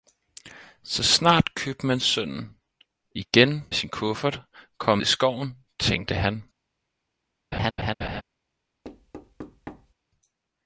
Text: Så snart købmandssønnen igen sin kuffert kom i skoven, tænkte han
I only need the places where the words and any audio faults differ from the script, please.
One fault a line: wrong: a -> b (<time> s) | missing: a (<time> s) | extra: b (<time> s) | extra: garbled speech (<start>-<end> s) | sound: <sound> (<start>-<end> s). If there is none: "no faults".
sound: laugh (7.5-8.2 s)
sound: thud (8.8-9.9 s)